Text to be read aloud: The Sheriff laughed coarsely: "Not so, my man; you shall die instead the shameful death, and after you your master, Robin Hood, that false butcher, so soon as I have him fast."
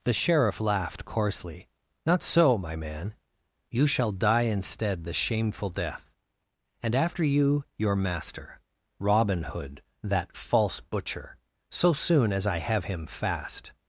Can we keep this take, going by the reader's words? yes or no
yes